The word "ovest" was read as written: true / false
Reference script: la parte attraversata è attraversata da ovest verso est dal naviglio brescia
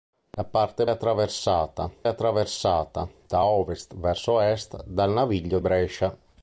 true